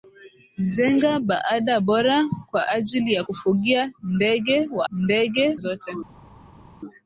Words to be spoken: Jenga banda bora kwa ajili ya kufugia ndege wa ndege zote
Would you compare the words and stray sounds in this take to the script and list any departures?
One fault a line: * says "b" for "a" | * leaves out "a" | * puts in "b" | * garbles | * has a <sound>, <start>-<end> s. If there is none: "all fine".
all fine